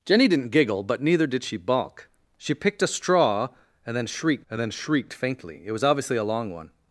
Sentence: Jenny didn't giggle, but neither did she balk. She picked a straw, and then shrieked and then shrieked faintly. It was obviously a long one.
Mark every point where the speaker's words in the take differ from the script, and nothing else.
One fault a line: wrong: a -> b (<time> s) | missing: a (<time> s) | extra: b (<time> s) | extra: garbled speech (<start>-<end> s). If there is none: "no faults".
no faults